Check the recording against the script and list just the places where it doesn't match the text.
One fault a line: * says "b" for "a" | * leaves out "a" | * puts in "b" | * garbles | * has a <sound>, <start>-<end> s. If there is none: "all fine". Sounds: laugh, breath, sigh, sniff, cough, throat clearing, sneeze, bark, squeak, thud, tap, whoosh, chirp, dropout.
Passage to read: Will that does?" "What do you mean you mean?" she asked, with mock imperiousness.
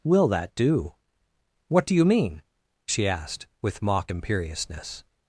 * says "do" for "does"
* leaves out "you mean"